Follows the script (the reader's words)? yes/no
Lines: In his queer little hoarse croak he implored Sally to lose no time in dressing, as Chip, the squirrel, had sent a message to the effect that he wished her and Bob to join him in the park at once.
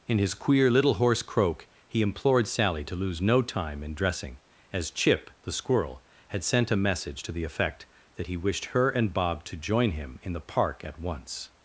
yes